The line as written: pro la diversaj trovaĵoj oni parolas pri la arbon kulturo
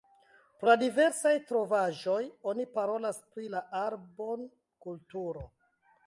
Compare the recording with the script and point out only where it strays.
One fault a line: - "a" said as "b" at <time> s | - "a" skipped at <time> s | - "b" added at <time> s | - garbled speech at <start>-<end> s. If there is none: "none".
none